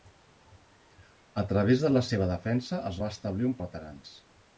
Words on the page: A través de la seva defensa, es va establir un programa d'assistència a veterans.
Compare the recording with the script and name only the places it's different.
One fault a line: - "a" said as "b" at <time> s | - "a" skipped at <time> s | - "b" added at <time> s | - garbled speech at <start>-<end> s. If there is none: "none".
- "programa d'assistència" skipped at 3.6 s